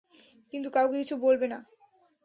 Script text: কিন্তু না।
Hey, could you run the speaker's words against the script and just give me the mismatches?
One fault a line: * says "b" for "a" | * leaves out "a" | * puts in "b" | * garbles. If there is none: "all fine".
* puts in "কাউকে কিছু বলবে"